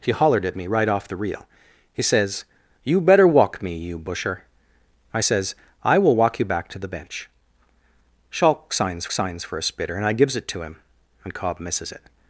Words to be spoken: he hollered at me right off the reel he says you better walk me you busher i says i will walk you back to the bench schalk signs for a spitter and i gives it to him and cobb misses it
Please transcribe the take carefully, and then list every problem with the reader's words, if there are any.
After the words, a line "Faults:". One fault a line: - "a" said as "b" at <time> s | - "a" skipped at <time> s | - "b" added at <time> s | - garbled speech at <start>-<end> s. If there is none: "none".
he hollered at me right off the reel he says you better walk me you busher i says i will walk you back to the bench schalk signs signs for a spitter and i gives it to him and cobb misses it
Faults:
- "signs" added at 9.1 s